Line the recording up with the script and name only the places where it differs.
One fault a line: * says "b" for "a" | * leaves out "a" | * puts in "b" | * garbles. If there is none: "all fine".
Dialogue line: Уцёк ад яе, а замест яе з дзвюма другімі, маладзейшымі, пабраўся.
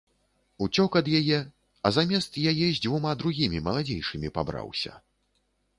all fine